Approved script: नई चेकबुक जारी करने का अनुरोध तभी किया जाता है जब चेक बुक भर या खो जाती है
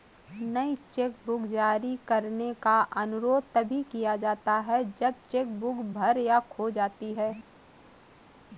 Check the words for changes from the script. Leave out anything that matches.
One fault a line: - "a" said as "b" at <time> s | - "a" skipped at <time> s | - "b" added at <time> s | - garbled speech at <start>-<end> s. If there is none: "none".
none